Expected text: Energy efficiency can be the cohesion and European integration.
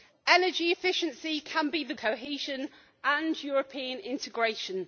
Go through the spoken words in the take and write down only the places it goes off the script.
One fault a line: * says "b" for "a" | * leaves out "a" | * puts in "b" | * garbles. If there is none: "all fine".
all fine